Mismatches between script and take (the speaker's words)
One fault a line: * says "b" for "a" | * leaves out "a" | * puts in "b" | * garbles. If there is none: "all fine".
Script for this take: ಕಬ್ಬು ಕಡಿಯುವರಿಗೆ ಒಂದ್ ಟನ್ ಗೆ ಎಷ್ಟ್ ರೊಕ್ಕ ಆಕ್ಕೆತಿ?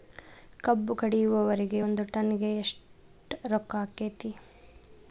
all fine